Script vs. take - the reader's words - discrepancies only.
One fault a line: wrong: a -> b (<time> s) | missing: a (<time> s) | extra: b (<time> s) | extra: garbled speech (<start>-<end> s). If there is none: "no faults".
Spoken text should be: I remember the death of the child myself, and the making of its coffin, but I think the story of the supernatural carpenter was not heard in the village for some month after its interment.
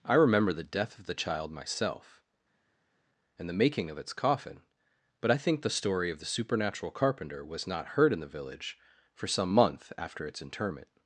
no faults